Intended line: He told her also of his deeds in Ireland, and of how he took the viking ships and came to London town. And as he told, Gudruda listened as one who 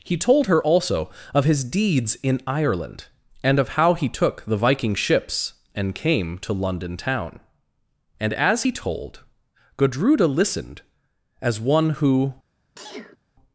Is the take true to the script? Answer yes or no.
yes